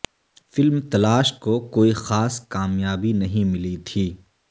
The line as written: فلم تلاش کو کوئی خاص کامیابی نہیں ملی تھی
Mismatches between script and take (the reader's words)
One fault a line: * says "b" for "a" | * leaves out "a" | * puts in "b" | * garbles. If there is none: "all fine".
all fine